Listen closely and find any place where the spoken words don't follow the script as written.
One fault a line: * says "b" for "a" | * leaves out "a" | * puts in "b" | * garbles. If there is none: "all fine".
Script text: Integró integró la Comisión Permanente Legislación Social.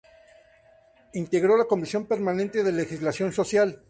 * leaves out "integró"
* puts in "de"